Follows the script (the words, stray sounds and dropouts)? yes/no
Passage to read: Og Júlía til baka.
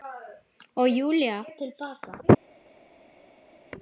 yes